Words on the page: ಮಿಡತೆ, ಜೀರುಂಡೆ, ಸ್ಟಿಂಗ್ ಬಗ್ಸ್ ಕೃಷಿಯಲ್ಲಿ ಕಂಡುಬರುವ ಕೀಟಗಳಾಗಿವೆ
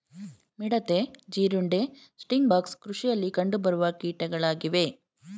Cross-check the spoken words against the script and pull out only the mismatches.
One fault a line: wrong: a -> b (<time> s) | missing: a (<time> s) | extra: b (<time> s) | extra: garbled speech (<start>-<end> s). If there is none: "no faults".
no faults